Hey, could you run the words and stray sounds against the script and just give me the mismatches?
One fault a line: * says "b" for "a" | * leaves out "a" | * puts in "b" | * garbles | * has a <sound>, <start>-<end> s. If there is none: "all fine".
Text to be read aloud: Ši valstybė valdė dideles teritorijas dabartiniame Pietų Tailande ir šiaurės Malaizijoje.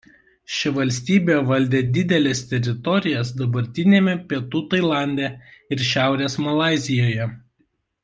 all fine